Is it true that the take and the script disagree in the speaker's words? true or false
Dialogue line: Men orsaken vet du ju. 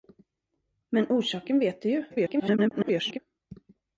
true